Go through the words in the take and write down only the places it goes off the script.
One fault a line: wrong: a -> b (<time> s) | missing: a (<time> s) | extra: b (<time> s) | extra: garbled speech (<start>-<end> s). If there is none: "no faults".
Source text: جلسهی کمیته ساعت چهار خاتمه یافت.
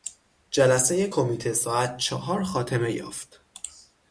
no faults